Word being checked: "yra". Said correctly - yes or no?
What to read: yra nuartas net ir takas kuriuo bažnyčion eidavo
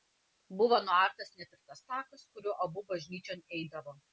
no